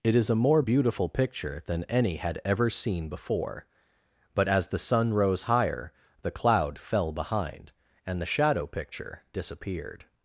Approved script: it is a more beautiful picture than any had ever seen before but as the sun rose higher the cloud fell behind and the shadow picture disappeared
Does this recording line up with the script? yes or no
yes